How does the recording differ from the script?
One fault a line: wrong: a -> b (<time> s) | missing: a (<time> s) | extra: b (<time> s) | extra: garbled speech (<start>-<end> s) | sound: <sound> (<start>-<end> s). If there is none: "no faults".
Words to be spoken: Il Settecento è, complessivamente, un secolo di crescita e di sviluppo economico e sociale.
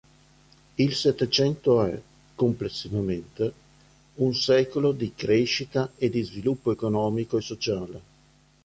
no faults